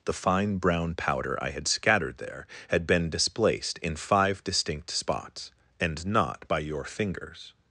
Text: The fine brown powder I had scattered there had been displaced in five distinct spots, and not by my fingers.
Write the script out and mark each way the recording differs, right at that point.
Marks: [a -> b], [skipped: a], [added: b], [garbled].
The fine brown powder I had scattered there had been displaced in five distinct spots, and not by [my -> your] fingers.